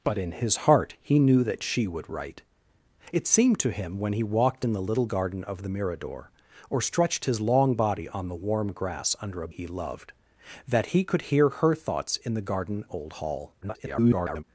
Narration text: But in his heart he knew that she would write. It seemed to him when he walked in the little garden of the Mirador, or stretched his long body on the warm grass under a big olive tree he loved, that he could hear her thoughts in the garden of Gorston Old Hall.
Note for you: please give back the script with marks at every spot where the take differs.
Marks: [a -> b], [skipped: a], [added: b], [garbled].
But in his heart he knew that she would write. It seemed to him when he walked in the little garden of the Mirador, or stretched his long body on the warm grass under a [skipped: big olive tree] he loved, that he could hear her thoughts in the garden [skipped: of Gorston] Old Hall. [garbled]